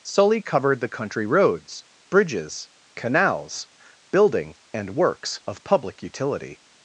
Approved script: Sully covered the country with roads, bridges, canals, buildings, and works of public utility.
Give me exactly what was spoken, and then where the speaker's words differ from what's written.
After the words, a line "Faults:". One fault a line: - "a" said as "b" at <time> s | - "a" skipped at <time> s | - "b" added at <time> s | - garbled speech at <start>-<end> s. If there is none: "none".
Sully covered the country roads, bridges, canals, building, and works of public utility.
Faults:
- "with" skipped at 1.2 s
- "buildings" said as "building" at 4.1 s